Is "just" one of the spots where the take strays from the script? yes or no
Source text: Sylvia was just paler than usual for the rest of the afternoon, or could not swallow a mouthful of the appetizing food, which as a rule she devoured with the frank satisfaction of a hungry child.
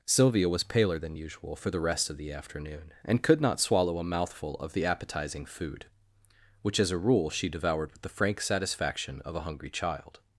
yes